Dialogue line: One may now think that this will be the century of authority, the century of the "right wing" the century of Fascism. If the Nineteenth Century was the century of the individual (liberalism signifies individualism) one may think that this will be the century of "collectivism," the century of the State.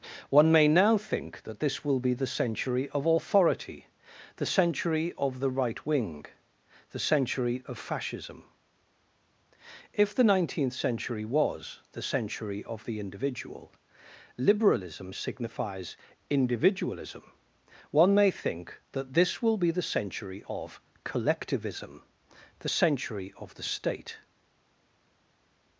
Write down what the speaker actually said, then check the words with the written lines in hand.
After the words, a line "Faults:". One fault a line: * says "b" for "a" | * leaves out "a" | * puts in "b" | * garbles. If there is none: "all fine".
One may now think that this will be the century of authority, the century of the "right wing" the century of Fascism. If the Nineteenth Century was the century of the individual (liberalism signifies individualism) one may think that this will be the century of "collectivism," the century of the State.
Faults:
all fine